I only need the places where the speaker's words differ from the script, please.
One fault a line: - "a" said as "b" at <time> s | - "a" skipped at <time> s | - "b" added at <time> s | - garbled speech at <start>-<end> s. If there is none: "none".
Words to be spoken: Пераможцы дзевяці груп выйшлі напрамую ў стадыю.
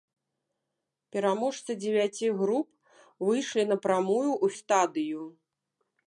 none